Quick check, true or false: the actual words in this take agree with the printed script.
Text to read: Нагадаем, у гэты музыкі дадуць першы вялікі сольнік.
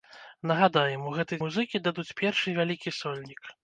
true